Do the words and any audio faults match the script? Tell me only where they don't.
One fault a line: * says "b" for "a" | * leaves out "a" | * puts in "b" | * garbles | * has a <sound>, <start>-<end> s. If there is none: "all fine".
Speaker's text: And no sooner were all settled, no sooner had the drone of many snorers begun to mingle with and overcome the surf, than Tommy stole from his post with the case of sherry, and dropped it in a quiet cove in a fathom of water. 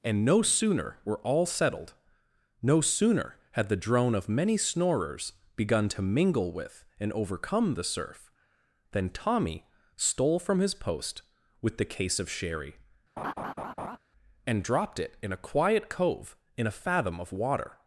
* has a laugh, 13.2-14.0 s